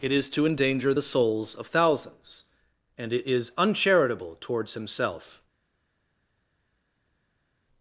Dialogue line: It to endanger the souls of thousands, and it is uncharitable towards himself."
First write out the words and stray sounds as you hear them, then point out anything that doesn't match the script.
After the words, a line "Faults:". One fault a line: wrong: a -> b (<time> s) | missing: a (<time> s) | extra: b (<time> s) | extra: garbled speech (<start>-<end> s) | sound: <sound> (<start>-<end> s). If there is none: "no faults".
It is to endanger the souls of thousands, and it is uncharitable towards himself."
Faults:
extra: is (0.1 s)